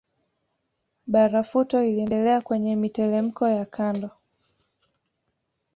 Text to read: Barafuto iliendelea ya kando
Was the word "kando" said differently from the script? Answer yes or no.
no